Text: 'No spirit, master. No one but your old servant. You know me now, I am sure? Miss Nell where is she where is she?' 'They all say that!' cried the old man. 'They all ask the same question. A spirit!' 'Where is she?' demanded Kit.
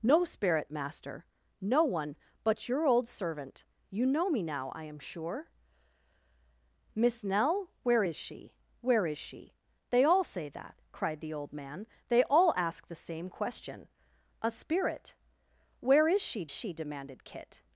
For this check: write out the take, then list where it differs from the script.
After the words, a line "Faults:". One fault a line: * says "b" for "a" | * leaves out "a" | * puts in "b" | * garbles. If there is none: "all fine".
'No spirit, master. No one but your old servant. You know me now, I am sure? Miss Nell where is she where is she?' 'They all say that!' cried the old man. 'They all ask the same question. A spirit!' 'Where is she she?' demanded Kit.
Faults:
* puts in "she"